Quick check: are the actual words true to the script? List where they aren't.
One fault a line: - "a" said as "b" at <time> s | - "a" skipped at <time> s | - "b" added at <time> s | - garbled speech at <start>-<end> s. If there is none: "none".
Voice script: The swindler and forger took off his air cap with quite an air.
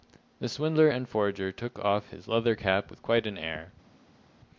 - "air" said as "leather" at 2.3 s